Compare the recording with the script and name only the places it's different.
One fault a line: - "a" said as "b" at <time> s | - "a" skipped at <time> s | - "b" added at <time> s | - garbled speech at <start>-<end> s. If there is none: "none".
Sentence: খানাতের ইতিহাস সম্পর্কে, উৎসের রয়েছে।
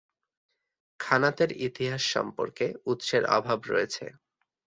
- "অভাব" added at 3.4 s